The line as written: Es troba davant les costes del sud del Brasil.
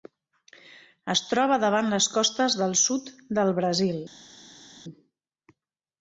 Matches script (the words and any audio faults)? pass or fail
pass